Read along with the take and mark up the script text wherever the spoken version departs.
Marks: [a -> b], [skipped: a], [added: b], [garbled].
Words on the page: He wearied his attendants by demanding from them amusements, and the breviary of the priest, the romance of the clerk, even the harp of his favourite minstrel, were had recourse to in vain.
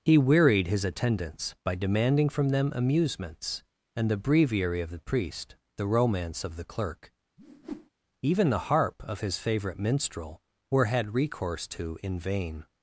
He wearied his attendants by demanding from them amusements, and the breviary of the priest, the romance of the clerk, even the harp of his favourite minstrel, were had recourse to in vain.